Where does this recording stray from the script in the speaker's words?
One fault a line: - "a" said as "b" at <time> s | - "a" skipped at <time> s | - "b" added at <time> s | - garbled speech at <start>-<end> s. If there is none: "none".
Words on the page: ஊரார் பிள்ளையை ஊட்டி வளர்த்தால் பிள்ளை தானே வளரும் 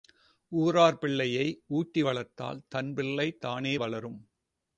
- "தன்" added at 2.7 s